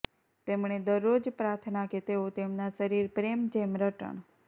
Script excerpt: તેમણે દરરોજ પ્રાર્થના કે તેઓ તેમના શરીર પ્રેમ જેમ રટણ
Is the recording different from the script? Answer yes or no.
no